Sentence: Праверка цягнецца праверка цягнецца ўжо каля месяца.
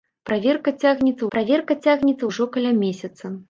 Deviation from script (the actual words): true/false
false